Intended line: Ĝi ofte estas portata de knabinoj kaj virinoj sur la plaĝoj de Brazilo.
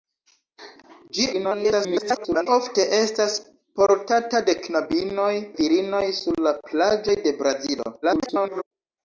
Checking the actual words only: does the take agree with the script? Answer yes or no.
no